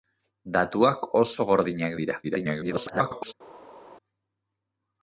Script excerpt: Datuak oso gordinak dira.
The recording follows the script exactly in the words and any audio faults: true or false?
false